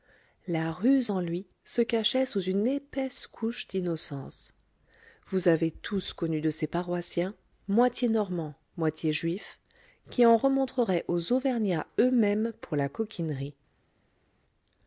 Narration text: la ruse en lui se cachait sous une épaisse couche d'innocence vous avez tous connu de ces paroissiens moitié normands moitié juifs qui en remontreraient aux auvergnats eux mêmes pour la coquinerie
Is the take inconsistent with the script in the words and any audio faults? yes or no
no